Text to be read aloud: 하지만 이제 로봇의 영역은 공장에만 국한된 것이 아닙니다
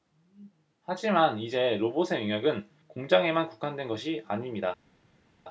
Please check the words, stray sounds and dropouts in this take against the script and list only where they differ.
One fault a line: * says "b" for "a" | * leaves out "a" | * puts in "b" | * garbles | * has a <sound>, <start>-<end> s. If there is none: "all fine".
all fine